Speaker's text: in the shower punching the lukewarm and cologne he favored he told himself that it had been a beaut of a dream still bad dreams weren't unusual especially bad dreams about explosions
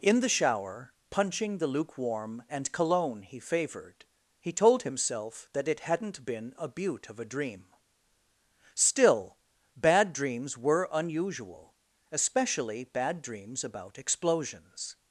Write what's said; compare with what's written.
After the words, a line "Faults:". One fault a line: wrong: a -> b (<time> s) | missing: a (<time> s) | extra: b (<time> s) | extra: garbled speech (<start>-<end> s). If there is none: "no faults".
in the shower punching the lukewarm and cologne he favored he told himself that it hadn't been a beaut of a dream still bad dreams were unusual especially bad dreams about explosions
Faults:
wrong: had -> hadn't (5.8 s)
wrong: weren't -> were (10.6 s)